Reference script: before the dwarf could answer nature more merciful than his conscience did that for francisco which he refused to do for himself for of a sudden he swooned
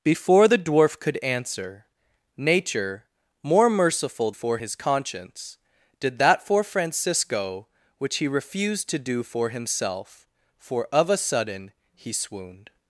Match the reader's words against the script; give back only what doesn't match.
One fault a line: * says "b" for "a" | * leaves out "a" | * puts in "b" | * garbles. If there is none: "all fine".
* says "for" for "than"